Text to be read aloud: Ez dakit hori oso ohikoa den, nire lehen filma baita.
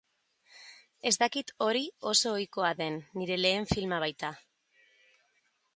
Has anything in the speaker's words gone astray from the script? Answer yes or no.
no